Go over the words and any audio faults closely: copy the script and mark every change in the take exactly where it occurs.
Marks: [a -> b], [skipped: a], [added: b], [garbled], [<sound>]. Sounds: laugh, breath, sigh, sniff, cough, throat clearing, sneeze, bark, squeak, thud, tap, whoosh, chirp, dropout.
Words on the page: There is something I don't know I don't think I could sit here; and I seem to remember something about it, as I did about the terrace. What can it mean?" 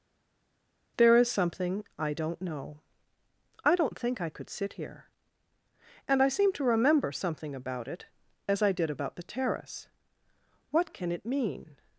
There is something I don't know I don't think I could sit here; and I seem to remember something about it, as I did about the terrace. What can it mean?"